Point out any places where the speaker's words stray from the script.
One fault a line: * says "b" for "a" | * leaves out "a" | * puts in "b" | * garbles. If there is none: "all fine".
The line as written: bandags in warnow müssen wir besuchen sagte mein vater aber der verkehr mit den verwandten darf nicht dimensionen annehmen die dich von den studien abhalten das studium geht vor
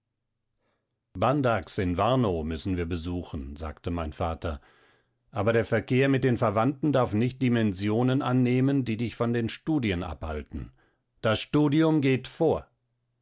all fine